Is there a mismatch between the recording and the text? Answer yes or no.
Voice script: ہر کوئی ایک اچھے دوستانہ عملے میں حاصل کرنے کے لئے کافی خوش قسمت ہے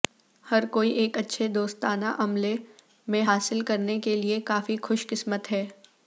no